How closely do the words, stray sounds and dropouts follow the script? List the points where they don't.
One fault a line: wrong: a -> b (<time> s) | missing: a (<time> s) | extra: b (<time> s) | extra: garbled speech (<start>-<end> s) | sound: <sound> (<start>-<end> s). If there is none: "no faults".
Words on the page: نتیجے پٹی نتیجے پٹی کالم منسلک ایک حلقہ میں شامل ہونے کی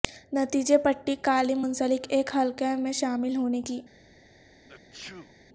missing: نتیجے پٹی (1.1 s)
sound: sneeze (4.7-5.3 s)